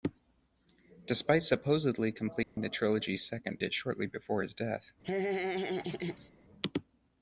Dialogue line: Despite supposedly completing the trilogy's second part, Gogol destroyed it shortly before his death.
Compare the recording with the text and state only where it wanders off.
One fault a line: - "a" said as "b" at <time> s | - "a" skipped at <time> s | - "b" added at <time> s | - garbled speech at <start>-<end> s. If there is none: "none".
- "part Gogol destroyed" skipped at 3.6 s